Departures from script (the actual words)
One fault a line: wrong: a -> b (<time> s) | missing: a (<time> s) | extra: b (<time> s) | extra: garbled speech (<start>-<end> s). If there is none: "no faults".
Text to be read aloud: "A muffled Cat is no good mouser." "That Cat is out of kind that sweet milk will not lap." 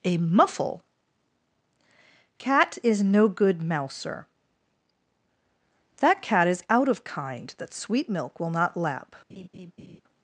wrong: muffled -> muffle (0.2 s)